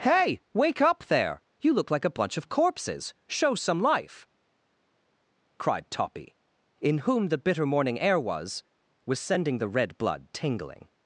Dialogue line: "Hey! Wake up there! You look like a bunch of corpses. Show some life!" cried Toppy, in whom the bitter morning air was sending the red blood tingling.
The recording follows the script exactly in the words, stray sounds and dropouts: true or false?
false